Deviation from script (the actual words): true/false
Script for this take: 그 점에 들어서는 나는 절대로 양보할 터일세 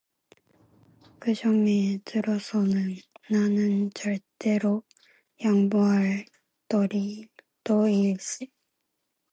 false